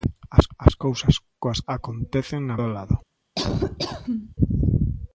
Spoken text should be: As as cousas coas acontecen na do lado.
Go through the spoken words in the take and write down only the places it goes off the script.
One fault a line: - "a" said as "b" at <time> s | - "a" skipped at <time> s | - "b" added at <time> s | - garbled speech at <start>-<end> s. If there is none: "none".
none